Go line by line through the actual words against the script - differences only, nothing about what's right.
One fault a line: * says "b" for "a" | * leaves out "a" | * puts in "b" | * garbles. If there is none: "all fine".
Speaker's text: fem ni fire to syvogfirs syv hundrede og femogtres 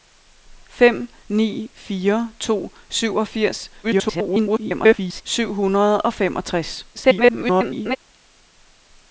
* garbles
* garbles